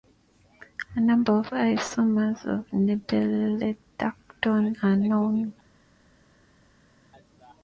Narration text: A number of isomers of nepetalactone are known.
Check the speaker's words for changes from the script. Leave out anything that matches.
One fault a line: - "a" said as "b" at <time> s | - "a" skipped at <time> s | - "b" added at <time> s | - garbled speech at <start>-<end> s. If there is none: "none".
none